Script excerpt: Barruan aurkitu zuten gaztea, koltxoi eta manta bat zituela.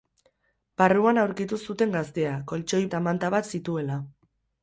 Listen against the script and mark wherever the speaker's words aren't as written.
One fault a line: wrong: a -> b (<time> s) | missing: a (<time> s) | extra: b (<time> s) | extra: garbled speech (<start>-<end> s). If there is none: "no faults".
no faults